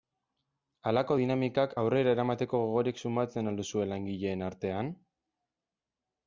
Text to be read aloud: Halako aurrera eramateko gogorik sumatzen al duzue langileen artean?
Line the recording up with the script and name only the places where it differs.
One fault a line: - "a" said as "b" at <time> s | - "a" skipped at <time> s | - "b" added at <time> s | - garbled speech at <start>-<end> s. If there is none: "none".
- "dinamikak" added at 1.2 s